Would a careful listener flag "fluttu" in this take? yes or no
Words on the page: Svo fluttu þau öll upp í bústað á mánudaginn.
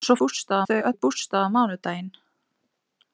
yes